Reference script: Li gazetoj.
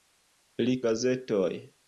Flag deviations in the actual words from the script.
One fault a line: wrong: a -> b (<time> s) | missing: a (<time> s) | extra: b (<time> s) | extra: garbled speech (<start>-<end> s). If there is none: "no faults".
no faults